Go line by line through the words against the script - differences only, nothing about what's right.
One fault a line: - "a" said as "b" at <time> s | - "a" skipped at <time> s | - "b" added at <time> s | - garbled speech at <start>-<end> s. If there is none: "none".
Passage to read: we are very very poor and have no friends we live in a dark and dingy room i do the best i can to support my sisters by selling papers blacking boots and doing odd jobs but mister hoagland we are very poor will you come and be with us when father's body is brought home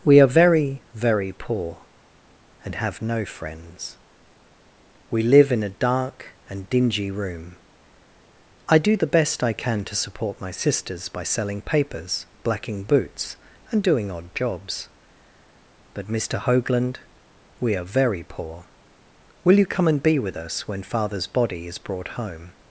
none